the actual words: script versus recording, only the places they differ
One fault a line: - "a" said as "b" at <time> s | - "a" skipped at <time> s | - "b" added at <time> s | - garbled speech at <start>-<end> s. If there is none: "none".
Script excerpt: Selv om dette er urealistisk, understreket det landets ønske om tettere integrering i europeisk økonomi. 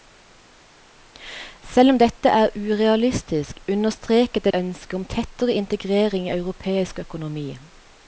- "landets" skipped at 4.5 s